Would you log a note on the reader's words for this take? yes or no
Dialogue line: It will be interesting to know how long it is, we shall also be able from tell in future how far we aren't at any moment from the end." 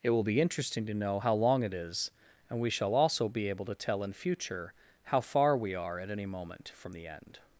yes